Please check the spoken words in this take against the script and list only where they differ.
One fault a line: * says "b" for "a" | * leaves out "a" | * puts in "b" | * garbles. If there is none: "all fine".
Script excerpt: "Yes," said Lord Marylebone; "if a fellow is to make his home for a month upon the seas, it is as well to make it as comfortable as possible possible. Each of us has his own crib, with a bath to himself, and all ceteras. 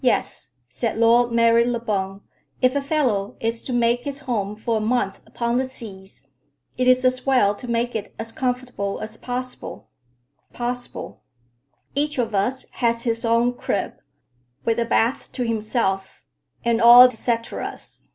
all fine